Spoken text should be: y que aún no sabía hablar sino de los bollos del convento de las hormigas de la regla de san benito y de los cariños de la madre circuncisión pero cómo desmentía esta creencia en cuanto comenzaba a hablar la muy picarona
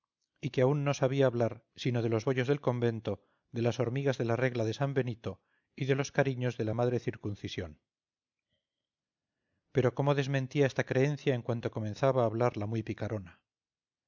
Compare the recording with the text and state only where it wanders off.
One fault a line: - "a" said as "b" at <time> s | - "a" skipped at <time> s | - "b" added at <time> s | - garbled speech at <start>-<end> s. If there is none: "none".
none